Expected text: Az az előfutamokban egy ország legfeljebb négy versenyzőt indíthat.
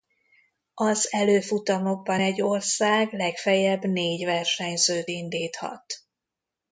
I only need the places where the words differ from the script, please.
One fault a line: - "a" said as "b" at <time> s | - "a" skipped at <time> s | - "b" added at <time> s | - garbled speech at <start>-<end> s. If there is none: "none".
- "az" skipped at 1.1 s